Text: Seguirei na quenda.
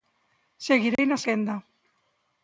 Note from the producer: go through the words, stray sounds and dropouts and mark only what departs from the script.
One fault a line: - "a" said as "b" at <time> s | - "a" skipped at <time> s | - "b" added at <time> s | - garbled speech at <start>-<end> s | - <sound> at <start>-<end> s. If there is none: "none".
- dropout at 1.0-1.0 s